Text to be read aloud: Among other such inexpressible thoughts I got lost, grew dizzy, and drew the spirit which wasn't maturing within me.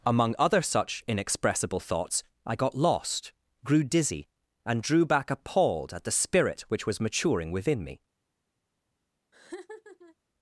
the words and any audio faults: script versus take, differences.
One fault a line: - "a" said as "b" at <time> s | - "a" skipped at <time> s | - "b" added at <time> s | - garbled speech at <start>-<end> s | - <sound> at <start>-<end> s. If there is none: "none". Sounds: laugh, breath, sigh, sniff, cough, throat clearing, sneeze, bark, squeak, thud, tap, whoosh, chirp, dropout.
- "back appalled at" added at 5.0 s
- "wasn't" said as "was" at 6.9 s
- laugh at 9.3-10.2 s